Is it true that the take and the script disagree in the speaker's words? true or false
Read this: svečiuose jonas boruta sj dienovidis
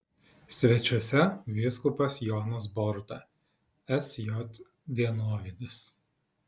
true